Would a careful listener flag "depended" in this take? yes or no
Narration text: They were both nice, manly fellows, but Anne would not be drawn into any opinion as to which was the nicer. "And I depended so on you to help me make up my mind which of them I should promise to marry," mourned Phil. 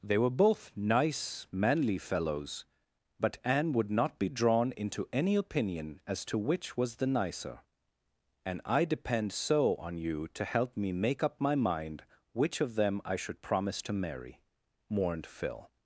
yes